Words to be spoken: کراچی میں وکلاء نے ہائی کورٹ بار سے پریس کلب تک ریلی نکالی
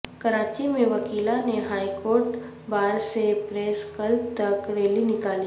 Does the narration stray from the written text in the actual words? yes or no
no